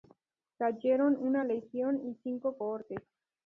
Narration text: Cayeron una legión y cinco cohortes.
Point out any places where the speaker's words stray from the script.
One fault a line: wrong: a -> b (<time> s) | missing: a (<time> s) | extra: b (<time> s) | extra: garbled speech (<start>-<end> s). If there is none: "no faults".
no faults